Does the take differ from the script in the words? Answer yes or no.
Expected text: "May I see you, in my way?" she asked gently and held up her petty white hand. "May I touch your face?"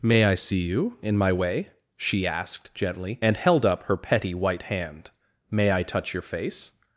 no